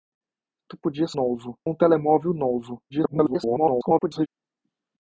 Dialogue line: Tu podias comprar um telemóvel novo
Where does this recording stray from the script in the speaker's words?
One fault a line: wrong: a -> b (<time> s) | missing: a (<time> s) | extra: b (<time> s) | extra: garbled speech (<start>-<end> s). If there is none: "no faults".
wrong: comprar -> novo (1.1 s)
extra: garbled speech (2.9-4.3 s)